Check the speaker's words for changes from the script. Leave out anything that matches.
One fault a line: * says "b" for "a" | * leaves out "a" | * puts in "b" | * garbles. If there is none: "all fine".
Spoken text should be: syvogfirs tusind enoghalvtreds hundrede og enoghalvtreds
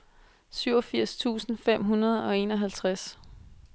* says "fem" for "enoghalvtreds"